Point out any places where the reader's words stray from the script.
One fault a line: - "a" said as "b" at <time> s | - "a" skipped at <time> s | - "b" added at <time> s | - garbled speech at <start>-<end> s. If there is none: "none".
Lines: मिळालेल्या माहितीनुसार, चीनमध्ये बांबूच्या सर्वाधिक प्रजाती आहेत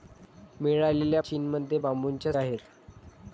- "माहितीनुसार" skipped at 1.2 s
- "सर्वाधिक प्रजाती" skipped at 2.3 s